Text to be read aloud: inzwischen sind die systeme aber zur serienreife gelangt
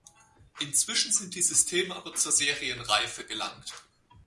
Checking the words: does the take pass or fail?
pass